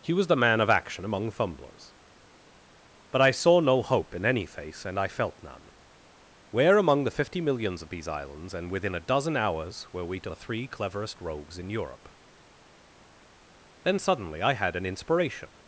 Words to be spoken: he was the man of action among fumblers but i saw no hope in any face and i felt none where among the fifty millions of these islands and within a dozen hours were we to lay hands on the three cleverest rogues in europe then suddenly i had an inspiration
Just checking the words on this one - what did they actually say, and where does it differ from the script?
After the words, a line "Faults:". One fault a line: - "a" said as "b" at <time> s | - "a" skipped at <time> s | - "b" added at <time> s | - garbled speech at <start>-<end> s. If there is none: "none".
he was the man of action among fumblers but i saw no hope in any face and i felt none where among the fifty millions of these islands and within a dozen hours were we to the three cleverest rogues in europe then suddenly i had an inspiration
Faults:
- "lay hands on" skipped at 10.3 s